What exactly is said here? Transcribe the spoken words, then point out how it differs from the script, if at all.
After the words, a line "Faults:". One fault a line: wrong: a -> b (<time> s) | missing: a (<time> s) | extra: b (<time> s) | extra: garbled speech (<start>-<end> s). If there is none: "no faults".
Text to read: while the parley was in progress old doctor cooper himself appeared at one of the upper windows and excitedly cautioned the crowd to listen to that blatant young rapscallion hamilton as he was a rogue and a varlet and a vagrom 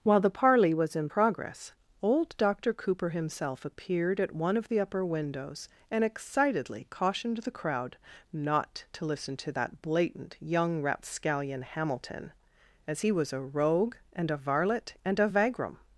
while the parley was in progress old doctor cooper himself appeared at one of the upper windows and excitedly cautioned the crowd not to listen to that blatant young rapscallion hamilton as he was a rogue and a varlet and a vagrom
Faults:
extra: not (8.3 s)